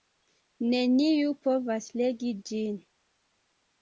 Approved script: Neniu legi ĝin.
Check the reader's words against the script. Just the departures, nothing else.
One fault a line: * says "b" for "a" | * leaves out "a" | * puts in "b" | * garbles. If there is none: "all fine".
* puts in "povas"